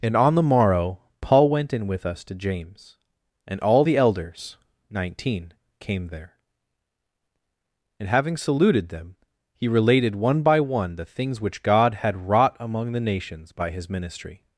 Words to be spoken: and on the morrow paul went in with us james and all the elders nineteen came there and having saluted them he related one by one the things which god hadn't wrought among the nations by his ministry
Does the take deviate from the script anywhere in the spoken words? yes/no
yes